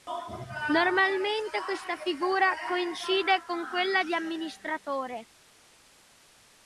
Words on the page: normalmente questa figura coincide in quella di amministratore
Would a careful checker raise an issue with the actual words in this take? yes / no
yes